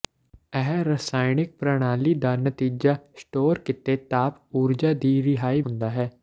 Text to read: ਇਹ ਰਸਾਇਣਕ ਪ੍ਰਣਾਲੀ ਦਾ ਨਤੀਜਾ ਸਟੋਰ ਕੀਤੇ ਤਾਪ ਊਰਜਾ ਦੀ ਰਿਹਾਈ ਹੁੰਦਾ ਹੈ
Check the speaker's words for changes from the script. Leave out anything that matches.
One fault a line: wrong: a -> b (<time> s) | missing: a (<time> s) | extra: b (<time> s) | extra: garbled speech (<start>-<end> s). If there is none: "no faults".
no faults